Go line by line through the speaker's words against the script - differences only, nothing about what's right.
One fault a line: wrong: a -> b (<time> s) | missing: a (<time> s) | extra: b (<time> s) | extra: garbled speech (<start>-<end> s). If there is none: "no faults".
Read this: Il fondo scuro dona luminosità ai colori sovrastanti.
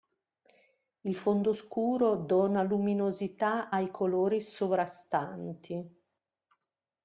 no faults